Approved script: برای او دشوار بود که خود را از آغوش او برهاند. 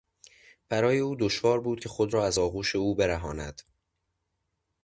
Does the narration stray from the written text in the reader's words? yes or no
no